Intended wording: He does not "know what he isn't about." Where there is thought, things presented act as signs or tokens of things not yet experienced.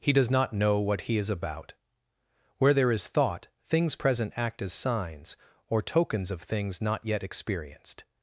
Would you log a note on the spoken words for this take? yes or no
yes